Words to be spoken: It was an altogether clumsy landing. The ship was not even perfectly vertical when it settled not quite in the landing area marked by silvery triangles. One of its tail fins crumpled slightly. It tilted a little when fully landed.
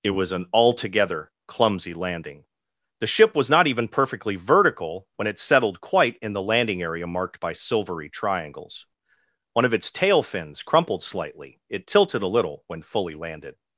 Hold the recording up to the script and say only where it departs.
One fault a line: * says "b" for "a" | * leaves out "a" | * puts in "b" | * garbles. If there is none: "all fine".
* leaves out "not"